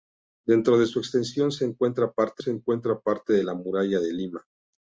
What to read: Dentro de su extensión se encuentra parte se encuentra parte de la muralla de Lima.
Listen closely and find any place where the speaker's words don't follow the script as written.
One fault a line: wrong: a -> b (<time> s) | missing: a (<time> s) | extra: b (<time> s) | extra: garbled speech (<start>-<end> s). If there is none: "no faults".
no faults